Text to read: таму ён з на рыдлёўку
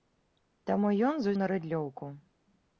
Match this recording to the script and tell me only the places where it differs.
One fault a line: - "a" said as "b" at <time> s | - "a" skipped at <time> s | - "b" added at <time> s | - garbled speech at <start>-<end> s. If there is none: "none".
none